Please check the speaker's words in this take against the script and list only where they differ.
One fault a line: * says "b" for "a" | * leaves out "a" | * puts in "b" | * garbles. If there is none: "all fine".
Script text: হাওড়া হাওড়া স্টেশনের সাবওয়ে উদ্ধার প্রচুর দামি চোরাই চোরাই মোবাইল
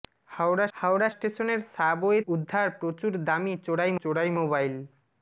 all fine